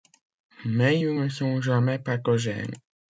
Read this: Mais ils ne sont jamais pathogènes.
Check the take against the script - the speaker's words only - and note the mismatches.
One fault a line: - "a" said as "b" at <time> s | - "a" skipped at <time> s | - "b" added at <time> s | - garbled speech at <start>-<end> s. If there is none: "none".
none